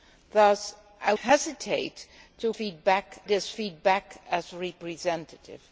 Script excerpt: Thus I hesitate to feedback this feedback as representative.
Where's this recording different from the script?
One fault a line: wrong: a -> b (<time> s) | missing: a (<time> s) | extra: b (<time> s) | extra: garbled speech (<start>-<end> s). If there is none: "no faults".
no faults